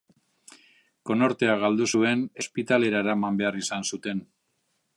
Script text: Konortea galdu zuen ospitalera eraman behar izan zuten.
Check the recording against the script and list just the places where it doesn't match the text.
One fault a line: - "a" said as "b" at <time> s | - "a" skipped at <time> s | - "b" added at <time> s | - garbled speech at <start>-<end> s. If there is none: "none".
none